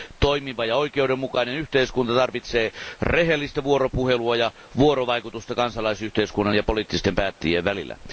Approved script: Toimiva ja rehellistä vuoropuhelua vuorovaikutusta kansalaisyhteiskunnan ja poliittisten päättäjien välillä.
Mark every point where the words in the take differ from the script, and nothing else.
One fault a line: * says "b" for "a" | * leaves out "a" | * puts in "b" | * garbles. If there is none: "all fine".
* puts in "oikeudenmukainen yhteiskunta tarvitsee"
* puts in "ja"